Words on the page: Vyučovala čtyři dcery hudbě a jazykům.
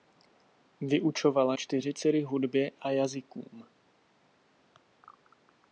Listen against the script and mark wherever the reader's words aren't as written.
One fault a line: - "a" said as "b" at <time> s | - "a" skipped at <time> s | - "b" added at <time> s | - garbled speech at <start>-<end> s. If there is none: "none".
none